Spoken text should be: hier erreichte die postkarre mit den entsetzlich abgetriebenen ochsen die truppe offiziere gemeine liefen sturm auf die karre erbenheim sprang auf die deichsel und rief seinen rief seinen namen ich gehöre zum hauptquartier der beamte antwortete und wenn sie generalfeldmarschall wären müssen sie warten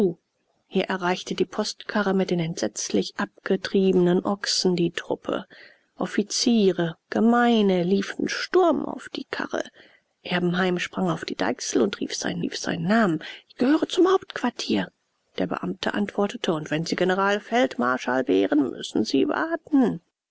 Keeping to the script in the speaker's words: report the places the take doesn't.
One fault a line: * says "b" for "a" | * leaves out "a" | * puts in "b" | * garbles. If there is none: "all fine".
all fine